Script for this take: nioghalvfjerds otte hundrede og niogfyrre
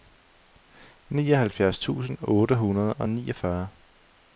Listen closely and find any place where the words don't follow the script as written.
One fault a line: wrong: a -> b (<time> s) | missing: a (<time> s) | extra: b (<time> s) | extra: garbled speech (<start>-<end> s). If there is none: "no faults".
extra: tusind (1.8 s)